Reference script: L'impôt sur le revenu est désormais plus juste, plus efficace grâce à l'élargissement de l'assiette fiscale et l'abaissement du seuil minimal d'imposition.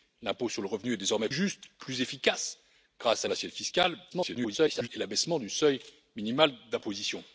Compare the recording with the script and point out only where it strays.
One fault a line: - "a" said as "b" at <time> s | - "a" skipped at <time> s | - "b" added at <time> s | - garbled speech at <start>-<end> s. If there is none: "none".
- "plus" skipped at 1.3 s
- "l'élargissement" skipped at 3.3 s
- garbled speech at 4.1-4.9 s